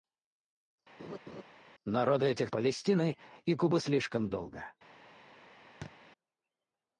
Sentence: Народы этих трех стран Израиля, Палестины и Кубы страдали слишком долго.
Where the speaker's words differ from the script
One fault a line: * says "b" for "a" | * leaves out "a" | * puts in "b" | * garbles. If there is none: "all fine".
* leaves out "трех стран Израиля"
* leaves out "страдали"